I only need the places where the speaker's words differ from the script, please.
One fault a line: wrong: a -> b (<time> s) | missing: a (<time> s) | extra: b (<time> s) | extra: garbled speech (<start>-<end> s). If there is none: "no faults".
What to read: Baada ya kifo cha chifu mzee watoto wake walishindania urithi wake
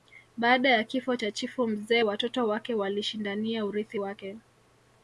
no faults